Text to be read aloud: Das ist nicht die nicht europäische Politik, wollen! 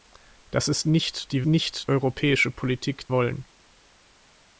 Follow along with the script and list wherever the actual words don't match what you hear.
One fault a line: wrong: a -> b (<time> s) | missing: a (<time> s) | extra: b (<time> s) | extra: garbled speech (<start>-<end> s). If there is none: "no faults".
no faults